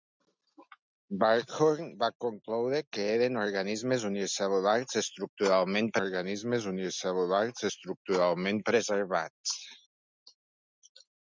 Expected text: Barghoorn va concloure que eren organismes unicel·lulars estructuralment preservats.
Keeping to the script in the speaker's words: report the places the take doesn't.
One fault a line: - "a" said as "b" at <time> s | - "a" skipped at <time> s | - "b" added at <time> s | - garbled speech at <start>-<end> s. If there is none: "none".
- "organismes unicel·lulars estructuralment" added at 6.0 s